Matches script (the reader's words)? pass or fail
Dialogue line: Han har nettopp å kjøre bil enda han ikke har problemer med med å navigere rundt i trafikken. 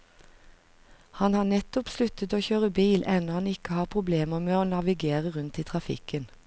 fail